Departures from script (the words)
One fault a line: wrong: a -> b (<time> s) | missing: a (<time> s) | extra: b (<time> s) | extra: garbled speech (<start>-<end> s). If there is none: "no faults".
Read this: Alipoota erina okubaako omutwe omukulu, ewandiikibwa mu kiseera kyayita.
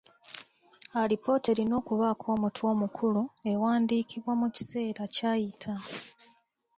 no faults